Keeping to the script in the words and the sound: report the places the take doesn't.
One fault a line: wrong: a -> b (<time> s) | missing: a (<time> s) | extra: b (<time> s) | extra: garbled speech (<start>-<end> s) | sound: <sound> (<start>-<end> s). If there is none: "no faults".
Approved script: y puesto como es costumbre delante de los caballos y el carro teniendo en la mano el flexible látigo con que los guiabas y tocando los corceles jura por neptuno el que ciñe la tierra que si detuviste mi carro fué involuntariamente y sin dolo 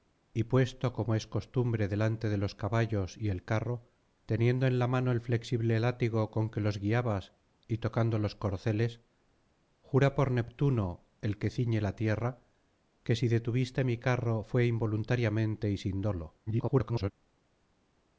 extra: garbled speech (16.5-17.1 s)